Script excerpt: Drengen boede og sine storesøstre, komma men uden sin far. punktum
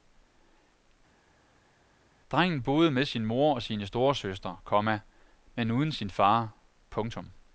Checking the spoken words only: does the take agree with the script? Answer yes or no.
no